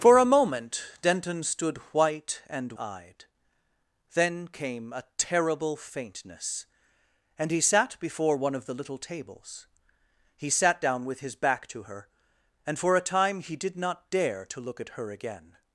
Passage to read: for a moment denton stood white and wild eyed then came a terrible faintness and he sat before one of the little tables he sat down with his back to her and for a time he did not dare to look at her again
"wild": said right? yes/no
no